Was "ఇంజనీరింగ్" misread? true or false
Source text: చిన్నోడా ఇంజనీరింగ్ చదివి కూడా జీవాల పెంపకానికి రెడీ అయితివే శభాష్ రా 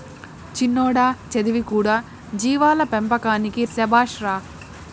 true